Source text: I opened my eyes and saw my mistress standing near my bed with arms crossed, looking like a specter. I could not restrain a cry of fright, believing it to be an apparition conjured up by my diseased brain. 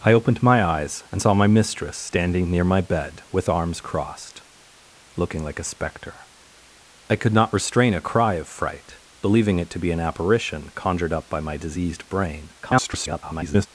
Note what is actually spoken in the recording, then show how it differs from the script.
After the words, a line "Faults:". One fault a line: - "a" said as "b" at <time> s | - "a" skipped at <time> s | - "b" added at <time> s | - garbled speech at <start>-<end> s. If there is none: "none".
I opened my eyes and saw my mistress standing near my bed with arms crossed, looking like a specter. I could not restrain a cry of fright, believing it to be an apparition conjured up by my diseased brain. [garbled]
Faults:
- garbled speech at 12.6-13.7 s